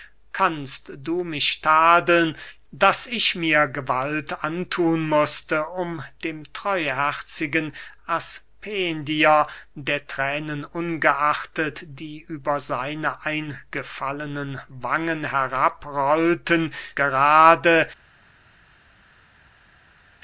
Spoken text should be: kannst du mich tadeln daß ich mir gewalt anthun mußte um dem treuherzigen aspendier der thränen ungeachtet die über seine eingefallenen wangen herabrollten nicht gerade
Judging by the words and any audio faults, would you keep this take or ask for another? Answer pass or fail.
fail